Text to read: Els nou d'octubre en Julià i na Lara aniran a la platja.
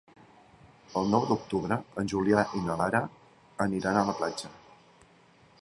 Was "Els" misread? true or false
true